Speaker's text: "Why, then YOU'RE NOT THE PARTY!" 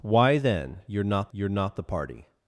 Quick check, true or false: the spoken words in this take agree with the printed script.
false